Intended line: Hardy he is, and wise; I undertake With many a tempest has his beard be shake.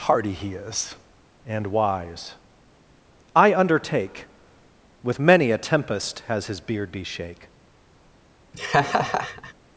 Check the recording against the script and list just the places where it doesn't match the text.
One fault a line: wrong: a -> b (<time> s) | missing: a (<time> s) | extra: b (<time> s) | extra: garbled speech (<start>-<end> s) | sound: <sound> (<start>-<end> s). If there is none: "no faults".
sound: laugh (8.5-9.5 s)